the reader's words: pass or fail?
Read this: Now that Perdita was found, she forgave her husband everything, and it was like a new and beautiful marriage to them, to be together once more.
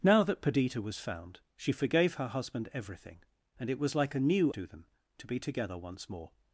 fail